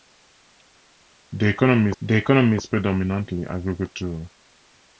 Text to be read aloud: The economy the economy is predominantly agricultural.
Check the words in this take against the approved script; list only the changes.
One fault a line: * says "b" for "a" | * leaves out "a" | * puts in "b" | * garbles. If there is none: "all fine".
all fine